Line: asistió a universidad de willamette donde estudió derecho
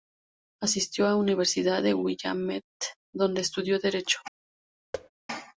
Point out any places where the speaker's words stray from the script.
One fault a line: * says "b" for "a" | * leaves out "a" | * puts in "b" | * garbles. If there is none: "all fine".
all fine